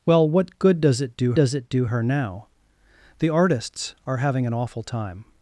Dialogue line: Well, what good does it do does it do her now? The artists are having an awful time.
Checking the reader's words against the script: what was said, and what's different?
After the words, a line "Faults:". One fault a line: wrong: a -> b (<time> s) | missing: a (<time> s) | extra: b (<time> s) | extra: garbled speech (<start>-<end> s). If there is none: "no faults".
Well, what good does it do does it do her now? The artists are having an awful time.
Faults:
no faults